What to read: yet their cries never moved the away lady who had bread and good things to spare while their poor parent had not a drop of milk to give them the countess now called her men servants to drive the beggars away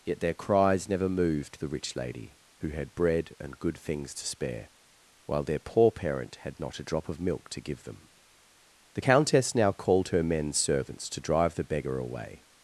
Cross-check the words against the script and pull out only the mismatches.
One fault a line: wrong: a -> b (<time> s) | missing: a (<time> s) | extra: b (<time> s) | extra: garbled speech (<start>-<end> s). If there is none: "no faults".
wrong: away -> rich (1.7 s)
wrong: beggars -> beggar (11.6 s)